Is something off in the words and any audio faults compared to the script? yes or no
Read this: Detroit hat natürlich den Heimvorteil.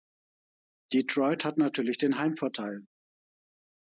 no